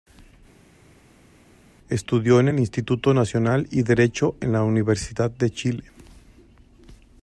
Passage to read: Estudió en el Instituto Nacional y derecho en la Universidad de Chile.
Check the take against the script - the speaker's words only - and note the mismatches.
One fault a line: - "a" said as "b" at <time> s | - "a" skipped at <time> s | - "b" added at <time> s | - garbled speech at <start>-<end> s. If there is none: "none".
none